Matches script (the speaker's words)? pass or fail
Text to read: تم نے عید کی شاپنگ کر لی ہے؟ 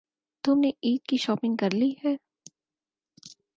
pass